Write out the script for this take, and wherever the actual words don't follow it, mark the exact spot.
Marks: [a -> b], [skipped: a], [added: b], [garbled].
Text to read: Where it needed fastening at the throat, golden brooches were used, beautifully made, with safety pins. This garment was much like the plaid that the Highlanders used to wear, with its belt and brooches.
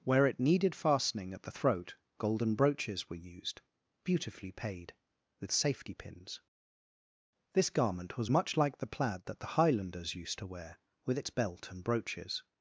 Where it needed fastening at the throat, golden brooches were used, beautifully [made, -> paid] with safety pins. This garment was much like the plaid that the Highlanders used to wear, with its belt and brooches.